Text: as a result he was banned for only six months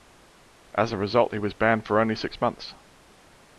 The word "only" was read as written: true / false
true